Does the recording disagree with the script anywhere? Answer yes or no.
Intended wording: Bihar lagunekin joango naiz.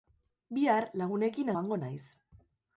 no